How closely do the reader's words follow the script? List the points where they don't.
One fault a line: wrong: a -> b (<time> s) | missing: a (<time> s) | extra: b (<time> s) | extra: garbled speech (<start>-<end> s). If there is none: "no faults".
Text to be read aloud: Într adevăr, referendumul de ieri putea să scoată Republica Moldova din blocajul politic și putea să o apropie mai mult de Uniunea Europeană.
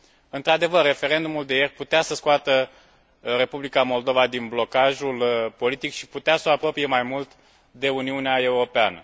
no faults